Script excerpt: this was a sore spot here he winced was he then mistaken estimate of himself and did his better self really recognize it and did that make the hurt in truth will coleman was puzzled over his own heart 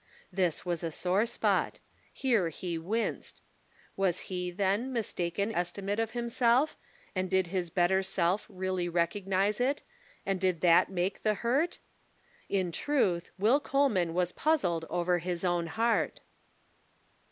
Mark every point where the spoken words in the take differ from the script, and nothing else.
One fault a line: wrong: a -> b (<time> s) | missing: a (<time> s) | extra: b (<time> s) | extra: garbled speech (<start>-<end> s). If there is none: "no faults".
no faults